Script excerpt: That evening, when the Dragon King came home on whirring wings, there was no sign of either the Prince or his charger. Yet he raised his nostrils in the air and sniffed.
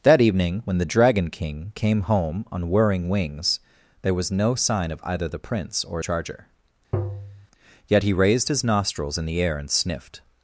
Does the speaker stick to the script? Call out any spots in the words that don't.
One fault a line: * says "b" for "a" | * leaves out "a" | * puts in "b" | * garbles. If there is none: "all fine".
* leaves out "his"